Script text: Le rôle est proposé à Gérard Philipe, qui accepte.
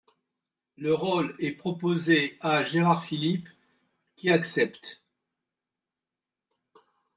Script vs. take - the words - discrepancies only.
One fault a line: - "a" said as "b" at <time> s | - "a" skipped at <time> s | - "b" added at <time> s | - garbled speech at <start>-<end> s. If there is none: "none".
none